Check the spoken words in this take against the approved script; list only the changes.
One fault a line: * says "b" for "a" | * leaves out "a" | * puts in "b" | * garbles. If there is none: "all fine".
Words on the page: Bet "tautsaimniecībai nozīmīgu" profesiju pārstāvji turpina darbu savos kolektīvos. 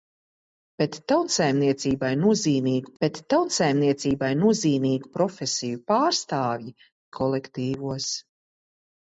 * says "bet tautsaimniecībai nozīmīgu profesiju pārstāvji" for "profesiju pārstāvji turpina darbu savos"